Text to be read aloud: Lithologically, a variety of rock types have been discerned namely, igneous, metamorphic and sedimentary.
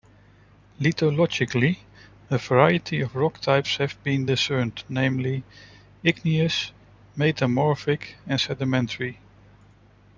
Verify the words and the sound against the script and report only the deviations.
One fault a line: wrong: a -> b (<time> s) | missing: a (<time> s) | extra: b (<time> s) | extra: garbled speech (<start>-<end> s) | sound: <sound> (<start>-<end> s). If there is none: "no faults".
no faults